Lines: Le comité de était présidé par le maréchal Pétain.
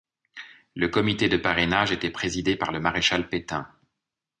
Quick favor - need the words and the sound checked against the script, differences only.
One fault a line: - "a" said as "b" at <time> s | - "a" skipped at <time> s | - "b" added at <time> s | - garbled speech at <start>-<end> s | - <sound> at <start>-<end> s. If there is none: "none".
- "parrainage" added at 1.4 s